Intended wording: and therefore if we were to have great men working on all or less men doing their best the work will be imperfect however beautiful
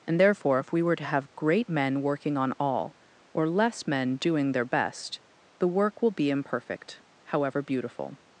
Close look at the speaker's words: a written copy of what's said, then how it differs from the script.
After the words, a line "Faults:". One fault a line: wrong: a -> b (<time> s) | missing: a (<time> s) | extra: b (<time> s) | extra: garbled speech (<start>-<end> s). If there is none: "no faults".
and therefore if we were to have great men working on all or less men doing their best the work will be imperfect however beautiful
Faults:
no faults